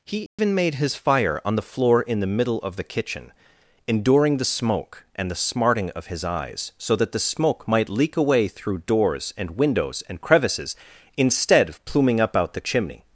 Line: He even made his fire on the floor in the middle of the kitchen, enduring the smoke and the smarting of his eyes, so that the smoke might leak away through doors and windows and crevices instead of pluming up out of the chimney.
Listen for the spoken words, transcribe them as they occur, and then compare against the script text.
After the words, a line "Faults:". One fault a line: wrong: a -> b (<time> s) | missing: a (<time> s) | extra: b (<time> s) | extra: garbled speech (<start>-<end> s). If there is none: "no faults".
He even made his fire on the floor in the middle of the kitchen, enduring the smoke and the smarting of his eyes, so that the smoke might leak away through doors and windows and crevices instead of pluming up out the chimney.
Faults:
missing: of (12.5 s)